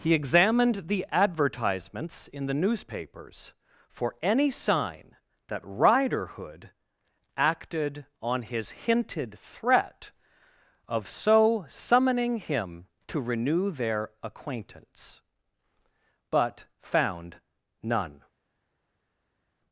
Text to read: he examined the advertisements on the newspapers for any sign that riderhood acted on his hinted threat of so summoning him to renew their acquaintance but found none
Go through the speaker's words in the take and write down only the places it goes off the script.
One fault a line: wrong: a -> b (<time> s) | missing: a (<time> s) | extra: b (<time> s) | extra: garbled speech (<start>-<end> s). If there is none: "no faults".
wrong: on -> in (2.3 s)